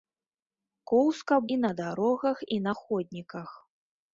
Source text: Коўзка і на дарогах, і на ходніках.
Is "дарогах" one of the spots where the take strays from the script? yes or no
no